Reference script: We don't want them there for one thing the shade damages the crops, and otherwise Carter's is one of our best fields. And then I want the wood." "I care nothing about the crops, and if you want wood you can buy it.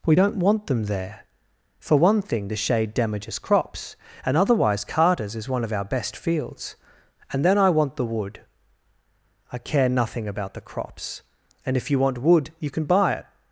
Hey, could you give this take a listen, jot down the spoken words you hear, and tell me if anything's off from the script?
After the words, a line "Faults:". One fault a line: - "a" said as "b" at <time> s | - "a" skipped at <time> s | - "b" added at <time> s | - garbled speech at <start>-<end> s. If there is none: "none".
We don't want them there for one thing the shade damages crops, and otherwise Carter's is one of our best fields. And then I want the wood." "I care nothing about the crops, and if you want wood you can buy it.
Faults:
- "the" skipped at 3.4 s